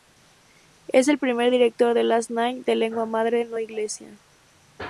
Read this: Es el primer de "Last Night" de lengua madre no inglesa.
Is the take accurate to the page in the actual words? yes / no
no